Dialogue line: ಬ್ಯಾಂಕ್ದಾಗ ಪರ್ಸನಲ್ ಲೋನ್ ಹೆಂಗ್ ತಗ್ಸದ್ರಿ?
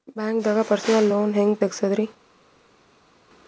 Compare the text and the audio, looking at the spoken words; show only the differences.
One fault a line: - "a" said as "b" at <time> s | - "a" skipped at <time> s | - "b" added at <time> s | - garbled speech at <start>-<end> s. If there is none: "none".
none